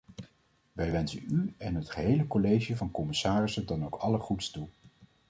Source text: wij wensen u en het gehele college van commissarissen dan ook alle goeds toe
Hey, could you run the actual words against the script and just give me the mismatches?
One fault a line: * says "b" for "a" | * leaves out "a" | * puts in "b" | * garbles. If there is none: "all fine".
all fine